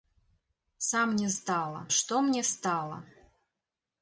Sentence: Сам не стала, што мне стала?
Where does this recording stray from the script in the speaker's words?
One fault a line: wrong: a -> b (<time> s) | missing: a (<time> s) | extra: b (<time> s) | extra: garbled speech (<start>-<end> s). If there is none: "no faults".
no faults